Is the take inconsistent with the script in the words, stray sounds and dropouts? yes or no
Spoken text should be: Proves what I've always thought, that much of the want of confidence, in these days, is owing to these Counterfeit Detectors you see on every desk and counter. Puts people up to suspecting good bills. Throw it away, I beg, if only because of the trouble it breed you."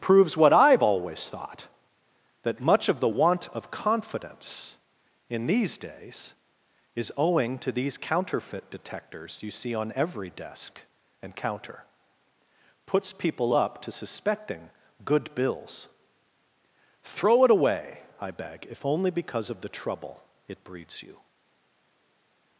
yes